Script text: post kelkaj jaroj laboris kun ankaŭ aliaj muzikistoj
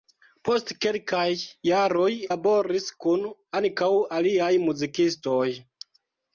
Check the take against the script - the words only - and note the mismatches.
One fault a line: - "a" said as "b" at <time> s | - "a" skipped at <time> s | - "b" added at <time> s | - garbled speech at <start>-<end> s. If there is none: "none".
none